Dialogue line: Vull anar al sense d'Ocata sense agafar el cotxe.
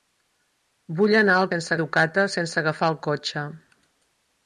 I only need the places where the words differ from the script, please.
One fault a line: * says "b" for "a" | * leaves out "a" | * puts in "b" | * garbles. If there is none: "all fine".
all fine